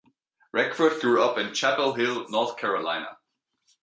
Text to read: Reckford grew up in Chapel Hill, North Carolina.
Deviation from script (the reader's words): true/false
false